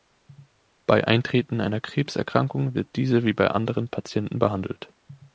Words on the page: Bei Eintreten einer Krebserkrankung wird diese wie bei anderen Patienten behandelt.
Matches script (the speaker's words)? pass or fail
pass